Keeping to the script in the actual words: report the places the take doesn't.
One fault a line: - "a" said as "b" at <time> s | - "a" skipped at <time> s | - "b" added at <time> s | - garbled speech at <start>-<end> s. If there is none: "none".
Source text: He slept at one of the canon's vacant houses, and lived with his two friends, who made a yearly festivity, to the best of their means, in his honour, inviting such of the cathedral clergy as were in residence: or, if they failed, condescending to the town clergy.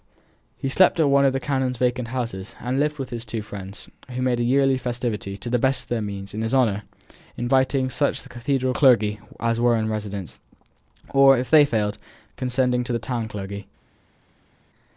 none